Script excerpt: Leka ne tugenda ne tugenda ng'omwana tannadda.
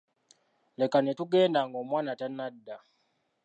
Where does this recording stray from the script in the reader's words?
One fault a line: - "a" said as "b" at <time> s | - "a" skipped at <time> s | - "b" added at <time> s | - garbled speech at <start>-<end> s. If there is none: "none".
- "ne tugenda" skipped at 1.6 s